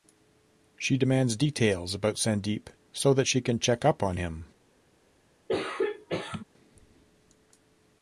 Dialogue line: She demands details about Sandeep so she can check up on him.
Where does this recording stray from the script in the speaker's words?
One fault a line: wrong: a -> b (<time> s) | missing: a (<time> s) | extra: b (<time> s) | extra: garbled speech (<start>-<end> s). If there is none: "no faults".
extra: that (3.1 s)